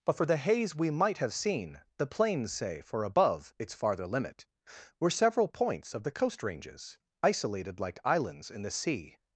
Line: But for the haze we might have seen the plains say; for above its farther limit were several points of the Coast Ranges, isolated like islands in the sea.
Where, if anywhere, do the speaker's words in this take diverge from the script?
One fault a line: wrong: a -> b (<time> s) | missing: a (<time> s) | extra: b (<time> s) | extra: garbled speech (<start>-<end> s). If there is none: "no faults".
no faults